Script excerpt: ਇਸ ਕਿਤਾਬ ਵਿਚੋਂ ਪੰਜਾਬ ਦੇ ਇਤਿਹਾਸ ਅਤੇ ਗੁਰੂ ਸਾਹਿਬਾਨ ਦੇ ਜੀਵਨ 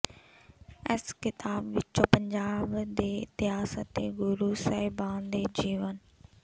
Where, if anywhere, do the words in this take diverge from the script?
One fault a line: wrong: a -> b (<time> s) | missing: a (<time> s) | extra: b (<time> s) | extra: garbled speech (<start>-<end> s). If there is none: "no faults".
no faults